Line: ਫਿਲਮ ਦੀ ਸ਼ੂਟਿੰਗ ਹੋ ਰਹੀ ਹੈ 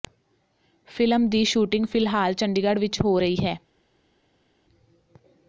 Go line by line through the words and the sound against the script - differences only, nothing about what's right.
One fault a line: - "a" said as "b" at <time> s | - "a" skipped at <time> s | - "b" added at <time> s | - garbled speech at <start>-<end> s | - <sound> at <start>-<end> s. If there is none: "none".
- "ਫਿਲਹਾਲ ਚੰਡੀਗੜ੍ਹ ਵਿੱਚ" added at 1.9 s